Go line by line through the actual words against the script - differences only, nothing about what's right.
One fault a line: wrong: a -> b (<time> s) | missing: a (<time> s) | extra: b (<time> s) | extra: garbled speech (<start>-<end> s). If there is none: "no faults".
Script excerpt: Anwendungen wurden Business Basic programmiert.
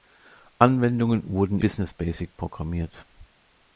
no faults